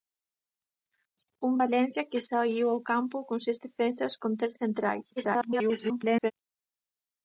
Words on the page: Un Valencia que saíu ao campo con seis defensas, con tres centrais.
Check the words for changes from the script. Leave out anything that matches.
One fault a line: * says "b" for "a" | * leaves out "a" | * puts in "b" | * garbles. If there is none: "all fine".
* garbles